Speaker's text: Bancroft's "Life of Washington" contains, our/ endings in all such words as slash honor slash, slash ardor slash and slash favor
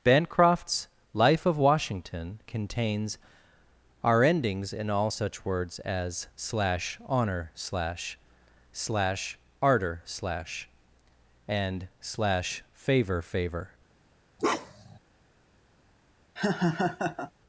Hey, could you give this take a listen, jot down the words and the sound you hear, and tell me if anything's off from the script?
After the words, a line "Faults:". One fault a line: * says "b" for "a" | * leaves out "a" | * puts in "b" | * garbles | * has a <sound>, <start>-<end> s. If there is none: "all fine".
Bancroft's "Life of Washington" contains, our/ endings in all such words as slash honor slash, slash ardor slash and slash favor favor
Faults:
* puts in "favor"
* has a bark, 14.4-15.0 s
* has a laugh, 16.4-17.3 s